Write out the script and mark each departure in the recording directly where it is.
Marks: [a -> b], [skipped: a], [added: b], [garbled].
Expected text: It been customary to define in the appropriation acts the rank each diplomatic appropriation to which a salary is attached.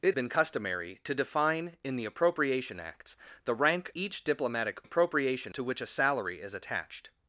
It been customary to define in the appropriation acts the rank each diplomatic appropriation to which a salary is attached.